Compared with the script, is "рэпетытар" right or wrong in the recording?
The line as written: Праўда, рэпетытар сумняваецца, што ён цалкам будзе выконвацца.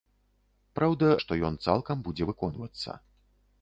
wrong